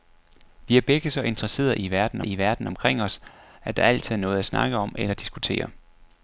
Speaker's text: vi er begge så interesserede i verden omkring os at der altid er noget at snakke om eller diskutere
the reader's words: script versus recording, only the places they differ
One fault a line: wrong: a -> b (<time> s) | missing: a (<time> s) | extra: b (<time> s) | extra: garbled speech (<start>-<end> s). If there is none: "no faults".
extra: i verden (2.2 s)